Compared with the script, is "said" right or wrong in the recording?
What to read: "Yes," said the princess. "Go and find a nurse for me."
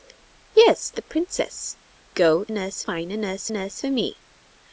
wrong